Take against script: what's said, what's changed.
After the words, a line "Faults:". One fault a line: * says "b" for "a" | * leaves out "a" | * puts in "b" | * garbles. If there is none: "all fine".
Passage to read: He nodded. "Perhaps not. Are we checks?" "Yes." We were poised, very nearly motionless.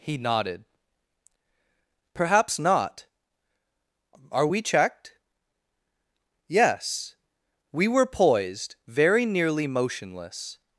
He nodded. "Perhaps not. Are we checked?" "Yes." We were poised, very nearly motionless.
Faults:
* says "checked" for "checks"